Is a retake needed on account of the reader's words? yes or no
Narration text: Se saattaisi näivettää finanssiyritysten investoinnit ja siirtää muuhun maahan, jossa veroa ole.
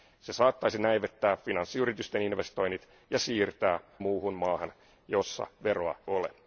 no